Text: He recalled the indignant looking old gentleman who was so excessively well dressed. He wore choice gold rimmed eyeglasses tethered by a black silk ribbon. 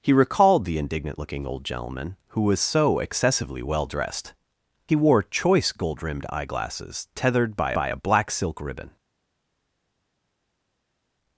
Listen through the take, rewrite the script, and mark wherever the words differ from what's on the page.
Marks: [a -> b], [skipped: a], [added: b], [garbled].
He recalled the indignant looking old gentleman who was so excessively well dressed. He wore choice gold rimmed eyeglasses tethered by [added: by] a black silk ribbon.